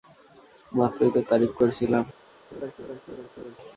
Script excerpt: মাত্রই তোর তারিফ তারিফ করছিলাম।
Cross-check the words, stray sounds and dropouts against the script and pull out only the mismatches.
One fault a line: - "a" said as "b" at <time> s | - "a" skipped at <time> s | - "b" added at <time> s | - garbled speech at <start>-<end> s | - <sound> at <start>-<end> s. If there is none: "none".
- "তারিফ" skipped at 1.5 s
- laugh at 2.5-3.6 s